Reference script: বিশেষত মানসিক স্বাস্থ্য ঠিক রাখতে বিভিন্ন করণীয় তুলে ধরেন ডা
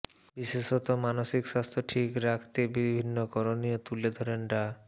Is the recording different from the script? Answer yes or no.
no